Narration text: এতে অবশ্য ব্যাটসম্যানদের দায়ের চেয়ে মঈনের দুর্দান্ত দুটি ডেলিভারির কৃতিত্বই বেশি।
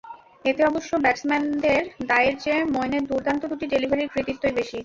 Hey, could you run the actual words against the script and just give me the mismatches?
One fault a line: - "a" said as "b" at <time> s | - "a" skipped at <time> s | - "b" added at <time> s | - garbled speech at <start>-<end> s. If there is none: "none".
none